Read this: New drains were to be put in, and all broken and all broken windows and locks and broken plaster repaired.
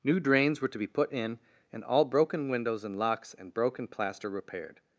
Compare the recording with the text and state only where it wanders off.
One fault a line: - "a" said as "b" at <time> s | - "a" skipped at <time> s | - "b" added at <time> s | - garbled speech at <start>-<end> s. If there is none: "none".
- "and all broken" skipped at 2.5 s